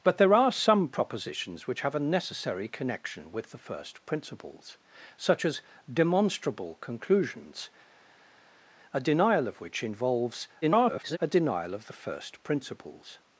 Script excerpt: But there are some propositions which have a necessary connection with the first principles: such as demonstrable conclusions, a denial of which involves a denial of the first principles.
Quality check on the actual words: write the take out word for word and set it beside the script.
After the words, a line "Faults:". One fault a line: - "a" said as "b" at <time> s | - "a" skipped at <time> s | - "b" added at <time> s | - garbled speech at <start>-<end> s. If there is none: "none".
But there are some propositions which have a necessary connection with the first principles: such as demonstrable conclusions, a denial of which involves [garbled] a denial of the first principles.
Faults:
- garbled speech at 10.6-11.2 s